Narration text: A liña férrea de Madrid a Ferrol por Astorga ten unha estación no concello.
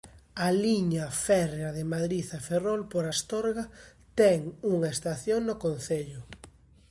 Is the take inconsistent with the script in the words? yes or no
no